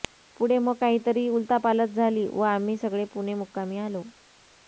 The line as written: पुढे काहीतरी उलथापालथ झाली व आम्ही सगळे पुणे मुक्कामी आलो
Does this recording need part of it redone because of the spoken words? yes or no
yes